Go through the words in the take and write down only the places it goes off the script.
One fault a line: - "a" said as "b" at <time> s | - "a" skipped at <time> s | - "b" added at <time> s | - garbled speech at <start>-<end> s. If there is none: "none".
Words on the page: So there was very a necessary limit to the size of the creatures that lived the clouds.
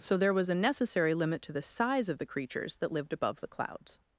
- "very" skipped at 0.5 s
- "above" added at 3.1 s